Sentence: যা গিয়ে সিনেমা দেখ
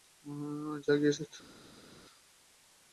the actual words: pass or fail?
fail